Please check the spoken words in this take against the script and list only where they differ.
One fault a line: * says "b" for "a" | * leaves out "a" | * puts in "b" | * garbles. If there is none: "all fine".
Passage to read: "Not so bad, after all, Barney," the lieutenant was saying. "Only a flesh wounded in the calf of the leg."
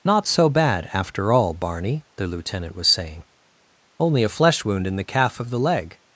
* says "wound" for "wounded"